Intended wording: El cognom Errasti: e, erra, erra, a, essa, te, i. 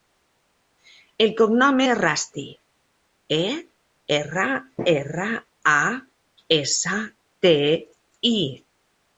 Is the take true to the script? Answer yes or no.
yes